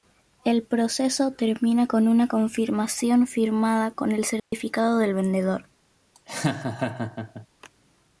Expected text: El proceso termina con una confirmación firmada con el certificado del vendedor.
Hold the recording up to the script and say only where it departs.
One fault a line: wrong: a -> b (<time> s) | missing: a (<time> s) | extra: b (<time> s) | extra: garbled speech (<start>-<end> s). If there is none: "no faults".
no faults